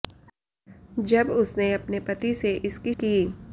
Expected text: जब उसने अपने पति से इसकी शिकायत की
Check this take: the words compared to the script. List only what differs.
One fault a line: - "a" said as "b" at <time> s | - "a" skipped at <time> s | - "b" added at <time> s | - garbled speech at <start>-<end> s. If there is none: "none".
- "शिकायत" skipped at 2.9 s